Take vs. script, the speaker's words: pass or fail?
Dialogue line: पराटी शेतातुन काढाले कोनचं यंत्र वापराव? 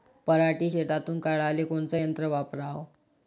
pass